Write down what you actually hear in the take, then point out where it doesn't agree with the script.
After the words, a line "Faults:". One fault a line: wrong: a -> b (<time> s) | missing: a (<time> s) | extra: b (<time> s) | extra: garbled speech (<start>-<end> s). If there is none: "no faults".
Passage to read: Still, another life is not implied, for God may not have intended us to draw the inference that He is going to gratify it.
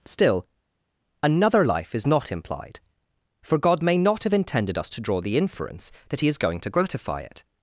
Still, another life is not implied, for God may not have intended us to draw the inference that He is going to gratify it.
Faults:
no faults